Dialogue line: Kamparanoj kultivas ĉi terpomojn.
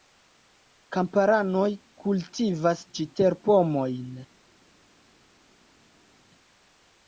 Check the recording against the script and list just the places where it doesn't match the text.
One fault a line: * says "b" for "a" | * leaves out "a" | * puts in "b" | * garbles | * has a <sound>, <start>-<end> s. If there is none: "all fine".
all fine